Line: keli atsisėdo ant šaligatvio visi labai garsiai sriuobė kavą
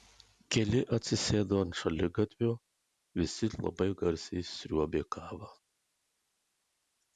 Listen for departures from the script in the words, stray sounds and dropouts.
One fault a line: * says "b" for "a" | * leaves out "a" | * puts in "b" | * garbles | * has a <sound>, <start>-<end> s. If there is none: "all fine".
all fine